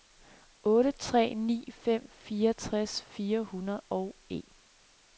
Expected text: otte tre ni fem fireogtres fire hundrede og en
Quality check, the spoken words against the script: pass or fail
pass